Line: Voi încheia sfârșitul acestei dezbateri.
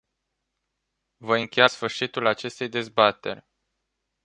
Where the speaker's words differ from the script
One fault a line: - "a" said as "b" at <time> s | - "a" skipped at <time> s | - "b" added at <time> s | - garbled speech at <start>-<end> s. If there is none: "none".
none